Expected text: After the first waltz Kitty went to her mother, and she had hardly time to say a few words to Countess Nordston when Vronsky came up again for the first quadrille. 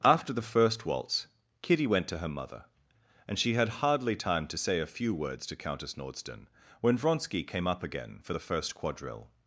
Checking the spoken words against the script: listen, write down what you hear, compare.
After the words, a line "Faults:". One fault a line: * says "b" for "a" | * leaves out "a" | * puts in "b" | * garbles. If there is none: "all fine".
After the first waltz Kitty went to her mother, and she had hardly time to say a few words to Countess Nordston when Vronsky came up again for the first quadrille.
Faults:
all fine